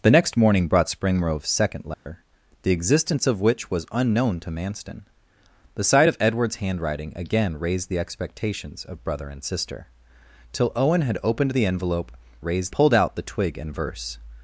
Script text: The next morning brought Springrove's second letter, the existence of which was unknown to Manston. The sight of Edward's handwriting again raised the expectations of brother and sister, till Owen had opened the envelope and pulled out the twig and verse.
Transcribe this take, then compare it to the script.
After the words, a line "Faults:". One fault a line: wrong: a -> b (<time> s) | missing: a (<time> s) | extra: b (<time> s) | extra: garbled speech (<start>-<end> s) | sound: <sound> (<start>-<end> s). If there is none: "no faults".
The next morning brought Springrove's second letter, the existence of which was unknown to Manston. The sight of Edward's handwriting again raised the expectations of brother and sister, till Owen had opened the envelope raised pulled out the twig and verse.
Faults:
sound: dropout (1.9-2.1 s)
wrong: and -> raised (12.4 s)